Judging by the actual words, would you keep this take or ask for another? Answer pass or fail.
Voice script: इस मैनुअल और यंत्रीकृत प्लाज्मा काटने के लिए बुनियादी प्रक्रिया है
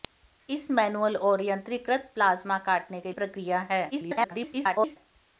fail